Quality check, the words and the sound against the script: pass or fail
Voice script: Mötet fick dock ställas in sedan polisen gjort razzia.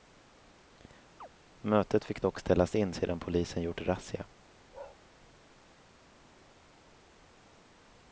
fail